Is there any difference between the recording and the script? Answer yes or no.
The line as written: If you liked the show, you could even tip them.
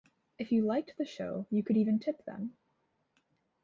no